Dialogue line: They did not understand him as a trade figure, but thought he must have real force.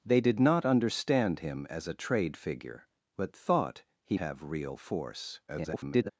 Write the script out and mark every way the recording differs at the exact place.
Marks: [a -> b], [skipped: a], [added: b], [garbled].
They did not understand him as a trade figure, but thought he [skipped: must] have real force. [garbled]